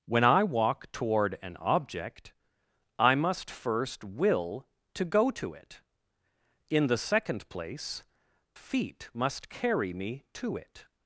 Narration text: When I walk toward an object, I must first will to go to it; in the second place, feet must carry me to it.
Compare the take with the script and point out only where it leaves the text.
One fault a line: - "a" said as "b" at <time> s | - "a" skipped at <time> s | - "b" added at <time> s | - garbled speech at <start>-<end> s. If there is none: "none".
none